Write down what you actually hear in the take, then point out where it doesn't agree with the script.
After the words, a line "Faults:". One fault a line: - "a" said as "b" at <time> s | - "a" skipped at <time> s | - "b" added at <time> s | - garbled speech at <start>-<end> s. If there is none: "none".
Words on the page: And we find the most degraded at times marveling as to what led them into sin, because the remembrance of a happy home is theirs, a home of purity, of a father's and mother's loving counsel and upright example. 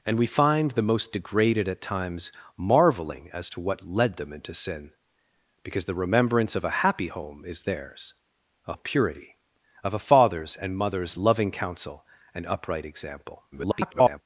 And we find the most degraded at times marveling as to what led them into sin, because the remembrance of a happy home is theirs, a of purity, of a father's and mother's loving counsel and upright example. [garbled]
Faults:
- "home" skipped at 8.7 s
- garbled speech at 13.5-14.2 s